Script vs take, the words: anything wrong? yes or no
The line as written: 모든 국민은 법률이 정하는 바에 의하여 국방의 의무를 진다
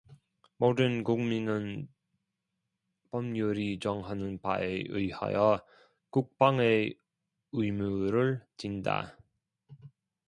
no